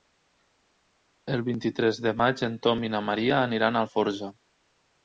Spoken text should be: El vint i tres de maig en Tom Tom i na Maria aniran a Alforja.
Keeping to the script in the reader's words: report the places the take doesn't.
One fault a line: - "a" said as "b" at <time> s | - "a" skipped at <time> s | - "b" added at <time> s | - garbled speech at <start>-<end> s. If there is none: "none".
- "Tom" skipped at 2.9 s